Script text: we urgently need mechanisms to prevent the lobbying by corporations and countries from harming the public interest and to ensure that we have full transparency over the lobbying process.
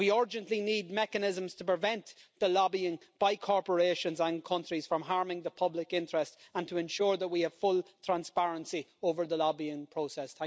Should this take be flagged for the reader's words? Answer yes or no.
no